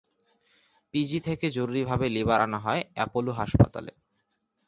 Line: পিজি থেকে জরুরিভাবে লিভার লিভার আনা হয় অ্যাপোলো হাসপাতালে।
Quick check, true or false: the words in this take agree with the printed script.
false